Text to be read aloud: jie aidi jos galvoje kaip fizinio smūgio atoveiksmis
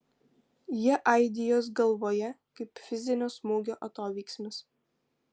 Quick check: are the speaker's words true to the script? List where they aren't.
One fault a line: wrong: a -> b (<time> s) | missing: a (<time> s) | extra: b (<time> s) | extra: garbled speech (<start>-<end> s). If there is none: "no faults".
no faults